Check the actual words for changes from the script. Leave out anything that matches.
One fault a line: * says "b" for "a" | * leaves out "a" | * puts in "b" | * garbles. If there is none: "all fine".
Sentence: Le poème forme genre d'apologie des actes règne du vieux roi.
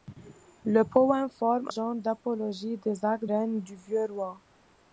all fine